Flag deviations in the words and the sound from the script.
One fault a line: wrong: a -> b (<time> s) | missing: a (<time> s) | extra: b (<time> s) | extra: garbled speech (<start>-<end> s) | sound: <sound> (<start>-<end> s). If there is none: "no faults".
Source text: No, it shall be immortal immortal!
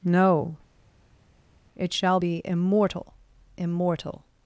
no faults